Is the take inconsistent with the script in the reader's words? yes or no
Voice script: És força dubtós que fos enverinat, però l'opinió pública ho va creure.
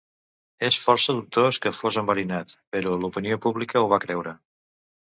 no